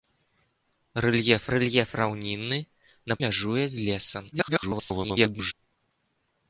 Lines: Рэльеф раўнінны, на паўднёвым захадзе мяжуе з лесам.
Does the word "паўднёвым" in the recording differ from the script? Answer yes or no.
yes